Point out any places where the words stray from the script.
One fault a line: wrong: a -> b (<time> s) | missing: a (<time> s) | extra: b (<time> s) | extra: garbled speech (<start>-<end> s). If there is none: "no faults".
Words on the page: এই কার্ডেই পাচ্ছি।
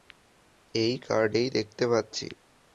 extra: দেখতে (1.5 s)